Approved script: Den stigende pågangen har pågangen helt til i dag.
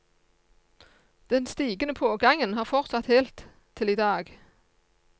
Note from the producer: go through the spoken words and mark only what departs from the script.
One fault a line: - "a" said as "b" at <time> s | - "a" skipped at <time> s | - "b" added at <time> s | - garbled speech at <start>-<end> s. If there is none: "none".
- "pågangen" said as "fortsatt" at 2.6 s